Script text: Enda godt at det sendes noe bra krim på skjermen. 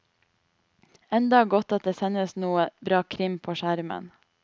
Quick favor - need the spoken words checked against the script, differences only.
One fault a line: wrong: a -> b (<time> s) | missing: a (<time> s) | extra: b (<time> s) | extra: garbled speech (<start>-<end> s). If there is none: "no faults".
no faults